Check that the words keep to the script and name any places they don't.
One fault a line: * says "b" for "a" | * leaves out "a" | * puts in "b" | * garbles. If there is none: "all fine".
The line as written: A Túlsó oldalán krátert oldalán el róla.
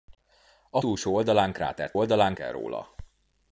all fine